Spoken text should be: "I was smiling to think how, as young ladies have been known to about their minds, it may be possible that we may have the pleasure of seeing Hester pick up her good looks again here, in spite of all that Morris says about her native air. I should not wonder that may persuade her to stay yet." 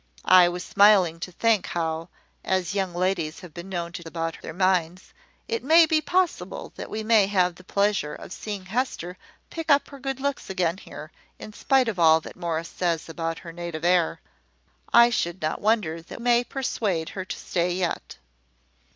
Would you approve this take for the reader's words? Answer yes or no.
yes